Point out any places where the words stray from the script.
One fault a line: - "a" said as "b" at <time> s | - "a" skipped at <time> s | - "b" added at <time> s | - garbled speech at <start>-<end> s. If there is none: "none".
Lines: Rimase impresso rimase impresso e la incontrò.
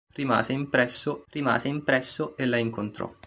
none